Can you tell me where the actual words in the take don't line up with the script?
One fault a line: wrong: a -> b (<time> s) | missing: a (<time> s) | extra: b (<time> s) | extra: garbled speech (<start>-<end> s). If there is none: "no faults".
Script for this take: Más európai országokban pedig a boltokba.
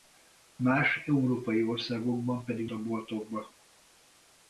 no faults